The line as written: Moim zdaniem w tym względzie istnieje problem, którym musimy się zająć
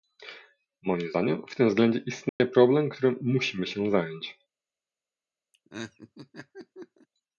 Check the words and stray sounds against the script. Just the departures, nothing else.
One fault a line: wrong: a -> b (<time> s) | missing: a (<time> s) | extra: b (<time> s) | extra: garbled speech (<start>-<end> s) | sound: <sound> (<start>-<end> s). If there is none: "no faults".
sound: dropout (2.3-2.4 s)
sound: laugh (5.5-7.1 s)